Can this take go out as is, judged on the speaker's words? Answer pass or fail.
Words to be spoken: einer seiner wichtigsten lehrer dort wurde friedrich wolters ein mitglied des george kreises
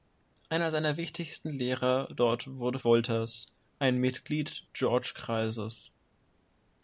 fail